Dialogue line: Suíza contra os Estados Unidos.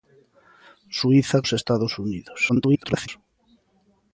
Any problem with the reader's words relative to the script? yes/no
yes